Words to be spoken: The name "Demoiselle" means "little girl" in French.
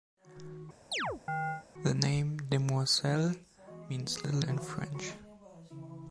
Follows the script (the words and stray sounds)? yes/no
no